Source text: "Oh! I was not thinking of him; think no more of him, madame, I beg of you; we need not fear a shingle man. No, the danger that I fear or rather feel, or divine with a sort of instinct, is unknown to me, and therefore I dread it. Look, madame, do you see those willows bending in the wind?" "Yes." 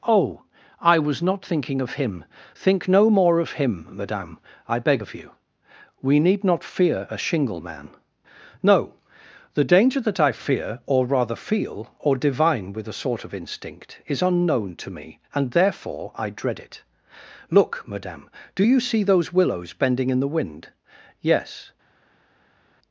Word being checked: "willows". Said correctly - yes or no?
yes